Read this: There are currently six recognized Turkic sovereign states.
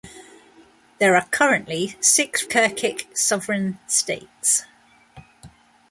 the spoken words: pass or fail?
fail